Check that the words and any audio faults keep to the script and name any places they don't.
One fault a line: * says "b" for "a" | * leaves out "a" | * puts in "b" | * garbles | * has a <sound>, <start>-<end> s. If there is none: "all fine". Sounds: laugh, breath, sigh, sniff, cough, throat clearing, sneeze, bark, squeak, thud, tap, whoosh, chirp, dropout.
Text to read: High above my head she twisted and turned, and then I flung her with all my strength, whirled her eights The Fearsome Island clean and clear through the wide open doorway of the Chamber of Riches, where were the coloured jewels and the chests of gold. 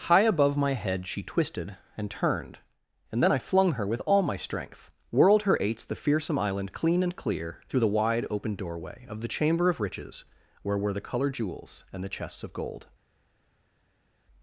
all fine